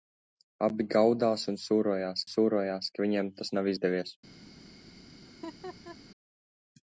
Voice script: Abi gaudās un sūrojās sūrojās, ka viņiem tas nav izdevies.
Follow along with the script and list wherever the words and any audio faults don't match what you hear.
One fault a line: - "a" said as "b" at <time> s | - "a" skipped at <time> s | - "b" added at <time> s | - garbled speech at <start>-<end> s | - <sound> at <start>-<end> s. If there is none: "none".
- laugh at 5.3-6.0 s